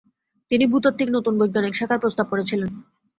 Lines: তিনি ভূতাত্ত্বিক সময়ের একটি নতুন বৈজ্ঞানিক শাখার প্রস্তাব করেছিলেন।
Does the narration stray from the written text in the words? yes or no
yes